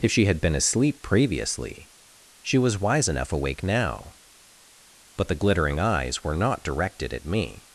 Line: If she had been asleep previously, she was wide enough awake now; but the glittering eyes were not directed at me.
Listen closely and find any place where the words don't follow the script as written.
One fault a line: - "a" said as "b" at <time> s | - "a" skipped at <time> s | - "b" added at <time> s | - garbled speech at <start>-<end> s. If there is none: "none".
- "wide" said as "wise" at 2.8 s